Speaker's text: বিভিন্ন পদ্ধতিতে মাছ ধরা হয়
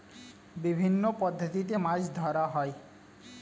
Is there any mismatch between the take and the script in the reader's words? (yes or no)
no